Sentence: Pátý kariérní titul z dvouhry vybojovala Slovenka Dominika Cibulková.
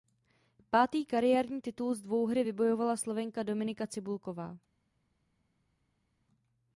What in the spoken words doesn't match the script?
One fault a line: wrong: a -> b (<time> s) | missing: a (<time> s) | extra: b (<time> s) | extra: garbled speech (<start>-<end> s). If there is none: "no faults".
no faults